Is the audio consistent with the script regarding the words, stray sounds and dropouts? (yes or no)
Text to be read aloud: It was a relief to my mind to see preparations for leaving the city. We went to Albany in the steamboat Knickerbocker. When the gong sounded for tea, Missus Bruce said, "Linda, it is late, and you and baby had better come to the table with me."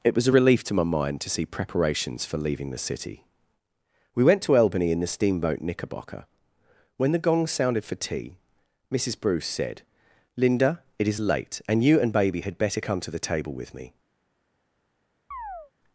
no